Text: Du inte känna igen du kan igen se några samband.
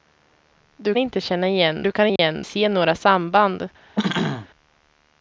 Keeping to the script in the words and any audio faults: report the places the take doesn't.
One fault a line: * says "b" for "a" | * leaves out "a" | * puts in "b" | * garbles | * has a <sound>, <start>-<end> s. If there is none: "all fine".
* has a dropout, 2.2-2.2 s
* has a throat clearing, 4.0-4.5 s